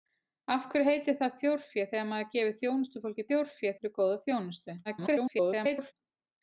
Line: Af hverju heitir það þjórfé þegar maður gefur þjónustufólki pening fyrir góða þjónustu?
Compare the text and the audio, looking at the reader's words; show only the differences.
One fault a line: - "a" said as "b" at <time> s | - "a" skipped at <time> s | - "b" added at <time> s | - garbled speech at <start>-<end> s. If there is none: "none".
- "pening" said as "þjórfé" at 3.3 s
- garbled speech at 4.8-5.9 s